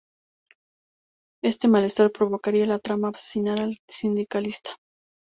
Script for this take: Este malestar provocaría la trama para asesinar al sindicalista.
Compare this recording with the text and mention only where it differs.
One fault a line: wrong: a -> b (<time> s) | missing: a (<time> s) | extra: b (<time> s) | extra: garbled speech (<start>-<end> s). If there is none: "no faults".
missing: para (3.1 s)